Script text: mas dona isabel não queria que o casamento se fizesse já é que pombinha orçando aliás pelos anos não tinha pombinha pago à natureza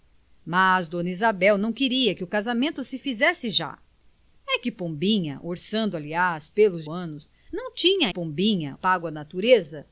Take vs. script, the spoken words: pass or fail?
pass